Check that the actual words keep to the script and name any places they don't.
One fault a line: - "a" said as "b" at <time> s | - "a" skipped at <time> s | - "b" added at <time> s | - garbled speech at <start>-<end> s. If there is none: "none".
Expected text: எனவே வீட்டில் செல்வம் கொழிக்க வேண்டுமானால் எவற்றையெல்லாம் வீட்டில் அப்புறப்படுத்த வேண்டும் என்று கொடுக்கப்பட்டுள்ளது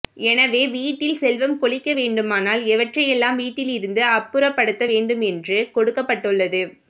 - "இருந்து" added at 3.7 s